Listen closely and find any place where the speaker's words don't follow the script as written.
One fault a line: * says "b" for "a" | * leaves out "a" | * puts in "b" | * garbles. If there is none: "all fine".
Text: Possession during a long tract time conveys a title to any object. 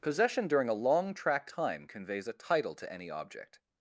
all fine